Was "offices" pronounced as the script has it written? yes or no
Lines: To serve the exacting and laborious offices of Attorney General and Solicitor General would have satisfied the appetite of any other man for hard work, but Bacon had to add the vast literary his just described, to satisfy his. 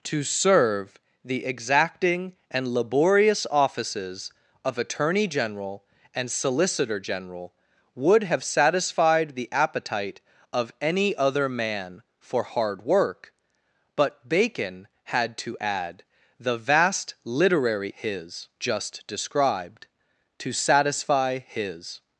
yes